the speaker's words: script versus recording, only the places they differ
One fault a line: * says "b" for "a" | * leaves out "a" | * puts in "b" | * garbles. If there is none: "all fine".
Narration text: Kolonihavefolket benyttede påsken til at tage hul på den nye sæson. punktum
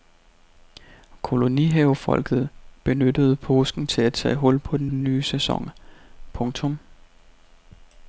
* puts in "den"